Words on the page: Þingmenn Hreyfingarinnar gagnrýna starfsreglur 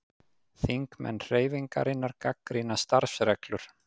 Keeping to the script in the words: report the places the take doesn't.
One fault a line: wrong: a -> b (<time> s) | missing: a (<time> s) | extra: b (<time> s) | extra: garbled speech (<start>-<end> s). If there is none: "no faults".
no faults